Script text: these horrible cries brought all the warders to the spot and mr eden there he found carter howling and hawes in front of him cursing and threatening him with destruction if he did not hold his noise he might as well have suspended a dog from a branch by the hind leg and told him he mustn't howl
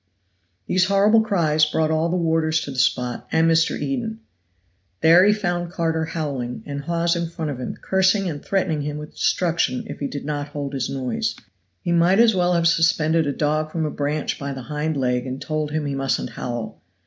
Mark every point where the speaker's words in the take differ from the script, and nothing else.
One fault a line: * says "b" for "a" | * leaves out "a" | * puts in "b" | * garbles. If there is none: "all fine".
all fine